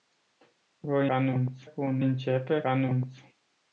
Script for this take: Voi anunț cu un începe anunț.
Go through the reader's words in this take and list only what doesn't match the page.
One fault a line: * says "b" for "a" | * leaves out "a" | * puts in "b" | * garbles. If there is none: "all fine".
all fine